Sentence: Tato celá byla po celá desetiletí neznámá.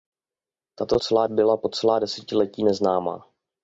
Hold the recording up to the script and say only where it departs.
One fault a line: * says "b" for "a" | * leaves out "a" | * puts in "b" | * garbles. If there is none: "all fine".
all fine